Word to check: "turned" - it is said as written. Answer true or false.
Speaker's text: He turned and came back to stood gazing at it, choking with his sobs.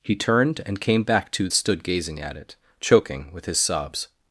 true